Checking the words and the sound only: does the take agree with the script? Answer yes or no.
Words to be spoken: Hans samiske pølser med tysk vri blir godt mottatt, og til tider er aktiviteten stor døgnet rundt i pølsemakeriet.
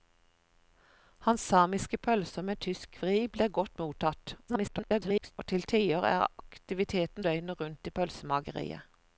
no